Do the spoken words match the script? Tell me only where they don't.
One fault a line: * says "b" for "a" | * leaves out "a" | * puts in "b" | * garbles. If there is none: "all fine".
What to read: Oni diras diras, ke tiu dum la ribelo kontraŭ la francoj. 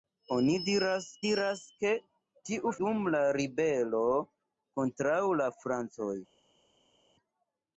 all fine